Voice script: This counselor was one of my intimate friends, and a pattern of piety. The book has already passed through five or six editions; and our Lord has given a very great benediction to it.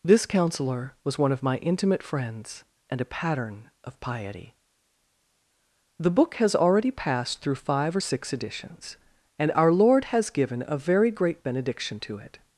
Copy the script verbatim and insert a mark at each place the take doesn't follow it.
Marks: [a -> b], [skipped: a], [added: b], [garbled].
This counselor was one of my intimate friends, and a pattern of piety. The book has already passed through five or six editions; and our Lord has given a very great benediction to it.